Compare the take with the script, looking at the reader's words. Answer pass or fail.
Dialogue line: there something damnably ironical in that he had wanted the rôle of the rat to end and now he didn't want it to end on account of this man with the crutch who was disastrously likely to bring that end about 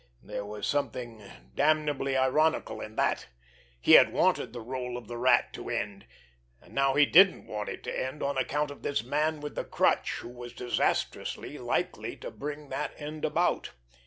fail